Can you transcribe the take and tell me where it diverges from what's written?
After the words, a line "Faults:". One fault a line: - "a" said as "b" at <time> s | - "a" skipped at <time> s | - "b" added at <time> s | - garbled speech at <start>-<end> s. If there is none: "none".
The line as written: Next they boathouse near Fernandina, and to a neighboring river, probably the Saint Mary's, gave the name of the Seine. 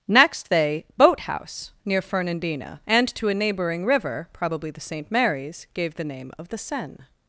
Next they boathouse near Fernandina, and to a neighboring river, probably the Saint Mary's, gave the name of the Seine.
Faults:
none